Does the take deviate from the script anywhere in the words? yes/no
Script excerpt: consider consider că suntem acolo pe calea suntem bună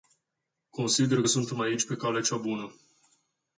yes